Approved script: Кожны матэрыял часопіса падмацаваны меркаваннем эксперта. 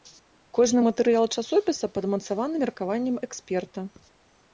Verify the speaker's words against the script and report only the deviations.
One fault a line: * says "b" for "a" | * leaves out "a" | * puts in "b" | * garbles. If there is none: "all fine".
all fine